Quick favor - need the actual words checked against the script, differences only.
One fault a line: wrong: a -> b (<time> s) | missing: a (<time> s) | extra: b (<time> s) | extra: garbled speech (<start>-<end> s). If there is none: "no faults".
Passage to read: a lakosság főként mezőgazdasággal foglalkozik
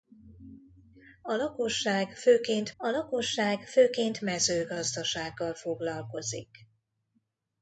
extra: a lakosság főként (2.8 s)